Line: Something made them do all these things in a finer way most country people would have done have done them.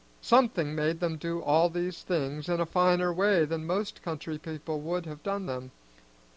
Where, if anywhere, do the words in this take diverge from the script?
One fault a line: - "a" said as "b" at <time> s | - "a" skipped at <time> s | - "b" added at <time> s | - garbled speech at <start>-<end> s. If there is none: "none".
- "than" added at 3.5 s
- "have done" skipped at 5.5 s